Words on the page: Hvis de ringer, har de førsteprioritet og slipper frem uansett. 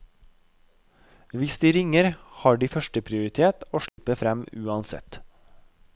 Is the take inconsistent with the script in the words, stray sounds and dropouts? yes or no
yes